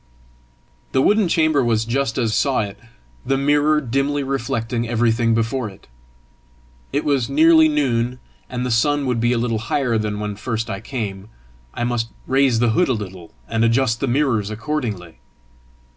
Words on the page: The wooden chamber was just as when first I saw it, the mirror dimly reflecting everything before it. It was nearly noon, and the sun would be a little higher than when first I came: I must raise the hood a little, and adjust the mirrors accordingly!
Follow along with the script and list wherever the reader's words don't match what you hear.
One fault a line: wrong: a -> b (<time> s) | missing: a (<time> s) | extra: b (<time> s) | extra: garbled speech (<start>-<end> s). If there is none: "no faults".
missing: when first I (2.3 s)